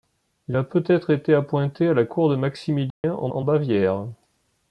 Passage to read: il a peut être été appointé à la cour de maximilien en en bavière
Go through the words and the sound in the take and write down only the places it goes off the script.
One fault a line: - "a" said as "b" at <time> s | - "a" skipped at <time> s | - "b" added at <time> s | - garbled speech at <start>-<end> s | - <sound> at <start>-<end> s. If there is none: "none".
- dropout at 2.9-3.0 s